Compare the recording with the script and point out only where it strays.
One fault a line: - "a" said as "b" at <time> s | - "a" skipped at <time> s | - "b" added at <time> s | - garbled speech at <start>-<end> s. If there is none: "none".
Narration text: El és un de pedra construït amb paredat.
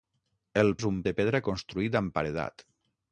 none